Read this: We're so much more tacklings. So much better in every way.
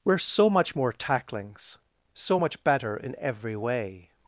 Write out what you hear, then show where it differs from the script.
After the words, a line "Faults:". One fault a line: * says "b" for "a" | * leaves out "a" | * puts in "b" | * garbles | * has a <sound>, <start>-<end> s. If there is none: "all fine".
We're so much more tacklings. So much better in every way.
Faults:
all fine